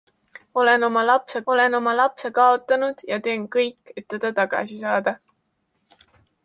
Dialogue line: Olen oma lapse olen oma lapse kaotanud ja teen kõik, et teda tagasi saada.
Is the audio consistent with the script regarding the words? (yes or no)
yes